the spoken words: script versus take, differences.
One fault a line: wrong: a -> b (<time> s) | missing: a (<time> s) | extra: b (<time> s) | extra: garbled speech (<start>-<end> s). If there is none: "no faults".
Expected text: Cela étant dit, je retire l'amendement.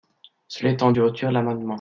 missing: dit (0.9 s)